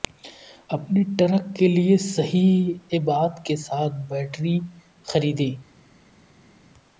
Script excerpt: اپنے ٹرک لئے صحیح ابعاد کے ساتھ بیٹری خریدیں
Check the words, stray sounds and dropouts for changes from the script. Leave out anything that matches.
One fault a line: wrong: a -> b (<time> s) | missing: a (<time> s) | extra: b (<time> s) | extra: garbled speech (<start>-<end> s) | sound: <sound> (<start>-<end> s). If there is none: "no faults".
extra: کے (1.6 s)